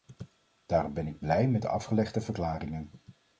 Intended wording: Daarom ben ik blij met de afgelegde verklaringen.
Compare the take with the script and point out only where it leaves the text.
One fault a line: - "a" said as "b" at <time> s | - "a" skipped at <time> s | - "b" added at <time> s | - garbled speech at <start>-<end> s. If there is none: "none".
none